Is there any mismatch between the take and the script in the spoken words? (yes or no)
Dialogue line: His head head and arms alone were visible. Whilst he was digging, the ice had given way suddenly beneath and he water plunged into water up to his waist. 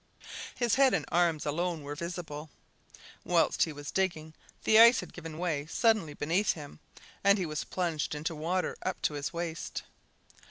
yes